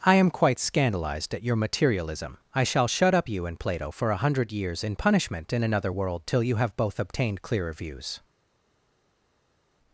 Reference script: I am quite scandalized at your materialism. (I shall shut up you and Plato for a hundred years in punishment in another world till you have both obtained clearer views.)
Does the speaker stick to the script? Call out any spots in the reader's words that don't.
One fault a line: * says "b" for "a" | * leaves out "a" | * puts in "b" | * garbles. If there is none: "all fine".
all fine